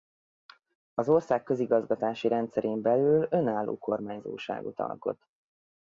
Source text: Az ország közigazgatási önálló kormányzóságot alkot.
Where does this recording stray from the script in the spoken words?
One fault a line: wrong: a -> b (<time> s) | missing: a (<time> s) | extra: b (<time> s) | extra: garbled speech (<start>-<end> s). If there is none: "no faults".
extra: rendszerén belül (2.3 s)